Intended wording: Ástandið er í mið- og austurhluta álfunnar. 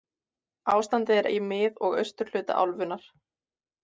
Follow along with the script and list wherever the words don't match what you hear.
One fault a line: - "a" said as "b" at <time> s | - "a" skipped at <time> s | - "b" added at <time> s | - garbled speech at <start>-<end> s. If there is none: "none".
none